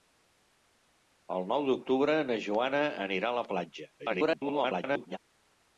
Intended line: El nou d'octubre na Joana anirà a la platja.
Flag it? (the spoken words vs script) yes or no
yes